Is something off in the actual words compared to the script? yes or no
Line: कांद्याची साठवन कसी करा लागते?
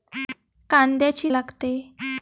yes